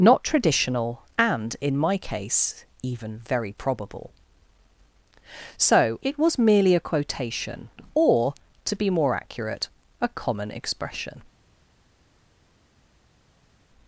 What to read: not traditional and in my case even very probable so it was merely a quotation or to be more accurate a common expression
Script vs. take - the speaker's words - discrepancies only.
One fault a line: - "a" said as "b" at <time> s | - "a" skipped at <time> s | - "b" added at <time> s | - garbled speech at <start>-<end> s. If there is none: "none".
none